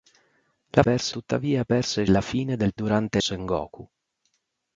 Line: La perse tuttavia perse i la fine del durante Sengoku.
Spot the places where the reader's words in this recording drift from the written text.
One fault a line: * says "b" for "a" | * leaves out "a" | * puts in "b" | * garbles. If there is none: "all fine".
all fine